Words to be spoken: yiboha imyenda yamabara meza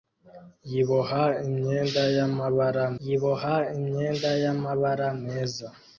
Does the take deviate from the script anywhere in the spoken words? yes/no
yes